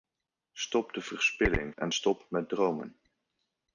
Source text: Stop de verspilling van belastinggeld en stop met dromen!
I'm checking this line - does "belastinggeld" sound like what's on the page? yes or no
no